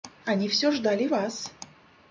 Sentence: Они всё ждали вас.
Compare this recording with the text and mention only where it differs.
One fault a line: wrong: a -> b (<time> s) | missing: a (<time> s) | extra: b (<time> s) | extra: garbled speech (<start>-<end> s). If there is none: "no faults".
no faults